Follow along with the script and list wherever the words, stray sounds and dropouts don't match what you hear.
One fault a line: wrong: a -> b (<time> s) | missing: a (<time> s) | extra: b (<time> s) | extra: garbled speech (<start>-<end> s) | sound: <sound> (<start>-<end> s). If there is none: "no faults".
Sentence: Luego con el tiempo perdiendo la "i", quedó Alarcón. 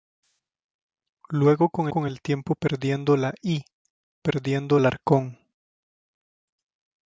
extra: con (1.9 s)
wrong: quedó -> perdiendo (4.2 s)